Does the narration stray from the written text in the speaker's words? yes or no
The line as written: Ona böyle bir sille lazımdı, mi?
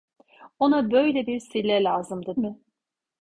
no